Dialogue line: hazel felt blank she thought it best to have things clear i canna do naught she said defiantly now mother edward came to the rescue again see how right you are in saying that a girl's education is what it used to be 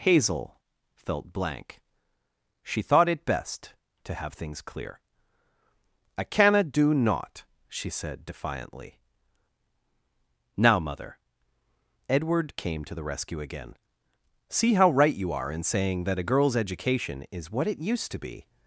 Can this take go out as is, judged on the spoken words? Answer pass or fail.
pass